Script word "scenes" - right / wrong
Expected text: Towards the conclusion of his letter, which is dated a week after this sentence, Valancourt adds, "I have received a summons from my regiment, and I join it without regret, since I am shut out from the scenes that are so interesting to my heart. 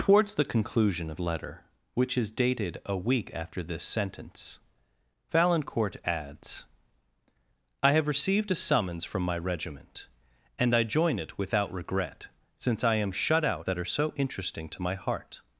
wrong